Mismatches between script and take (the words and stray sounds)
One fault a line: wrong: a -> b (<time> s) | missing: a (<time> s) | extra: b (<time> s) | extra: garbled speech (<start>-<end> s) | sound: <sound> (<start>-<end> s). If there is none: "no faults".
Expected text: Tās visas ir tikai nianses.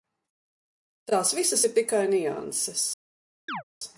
sound: chirp (3.5-3.6 s)